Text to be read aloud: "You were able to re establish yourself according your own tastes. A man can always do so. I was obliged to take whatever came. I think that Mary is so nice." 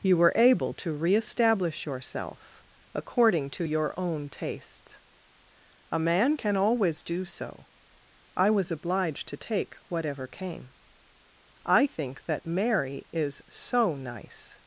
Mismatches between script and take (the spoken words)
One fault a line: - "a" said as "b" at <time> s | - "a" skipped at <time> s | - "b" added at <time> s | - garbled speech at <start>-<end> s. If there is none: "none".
- "to" added at 3.5 s